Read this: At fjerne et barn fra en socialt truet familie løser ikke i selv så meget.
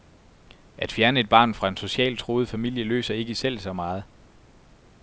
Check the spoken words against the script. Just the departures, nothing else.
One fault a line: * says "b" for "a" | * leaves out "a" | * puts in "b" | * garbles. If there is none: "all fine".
all fine